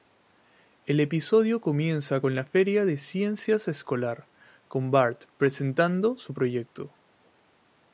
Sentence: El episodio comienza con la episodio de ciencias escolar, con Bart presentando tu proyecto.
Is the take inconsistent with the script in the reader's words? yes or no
yes